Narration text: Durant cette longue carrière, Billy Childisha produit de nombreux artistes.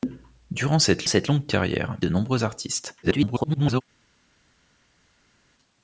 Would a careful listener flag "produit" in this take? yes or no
yes